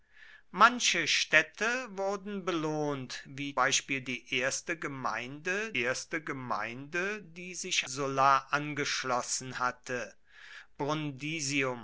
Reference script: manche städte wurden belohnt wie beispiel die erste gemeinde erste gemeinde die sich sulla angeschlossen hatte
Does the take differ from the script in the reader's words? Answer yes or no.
no